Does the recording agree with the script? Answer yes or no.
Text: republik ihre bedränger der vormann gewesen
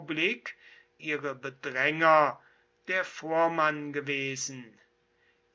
yes